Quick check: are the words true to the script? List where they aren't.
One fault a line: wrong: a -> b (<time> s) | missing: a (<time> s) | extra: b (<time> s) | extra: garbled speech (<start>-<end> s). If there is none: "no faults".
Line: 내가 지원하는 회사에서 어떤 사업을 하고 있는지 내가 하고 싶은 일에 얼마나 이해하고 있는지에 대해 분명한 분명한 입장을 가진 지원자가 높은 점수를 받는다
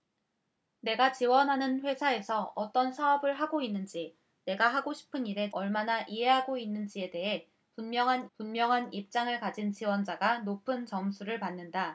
no faults